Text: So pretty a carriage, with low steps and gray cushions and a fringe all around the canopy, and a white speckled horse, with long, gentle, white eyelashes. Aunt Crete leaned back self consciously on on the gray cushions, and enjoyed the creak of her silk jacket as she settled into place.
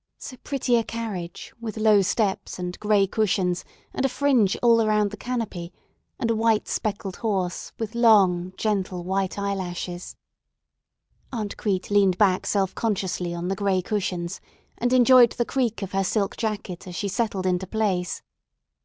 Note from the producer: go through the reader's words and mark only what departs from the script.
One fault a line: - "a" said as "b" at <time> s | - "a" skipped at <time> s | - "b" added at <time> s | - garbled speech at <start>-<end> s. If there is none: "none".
- "on" skipped at 13.5 s